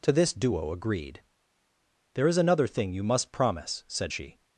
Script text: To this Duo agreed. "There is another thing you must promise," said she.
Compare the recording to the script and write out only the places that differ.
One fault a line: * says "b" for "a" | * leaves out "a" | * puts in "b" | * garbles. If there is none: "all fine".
all fine